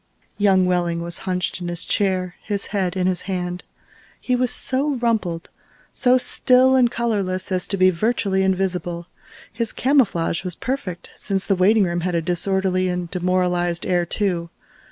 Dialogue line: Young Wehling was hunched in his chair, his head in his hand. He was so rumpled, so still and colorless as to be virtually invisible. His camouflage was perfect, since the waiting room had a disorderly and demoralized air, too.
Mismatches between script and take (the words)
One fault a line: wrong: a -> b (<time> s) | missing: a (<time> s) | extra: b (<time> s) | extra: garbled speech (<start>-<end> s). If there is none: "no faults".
no faults